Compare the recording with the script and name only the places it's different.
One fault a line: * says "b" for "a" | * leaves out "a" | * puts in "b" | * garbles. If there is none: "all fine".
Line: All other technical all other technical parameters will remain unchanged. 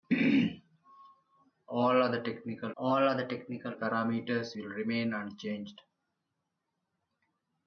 all fine